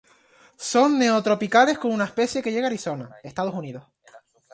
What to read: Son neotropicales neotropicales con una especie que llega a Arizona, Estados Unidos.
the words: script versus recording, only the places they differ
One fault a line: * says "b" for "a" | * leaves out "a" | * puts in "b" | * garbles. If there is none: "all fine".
* leaves out "neotropicales"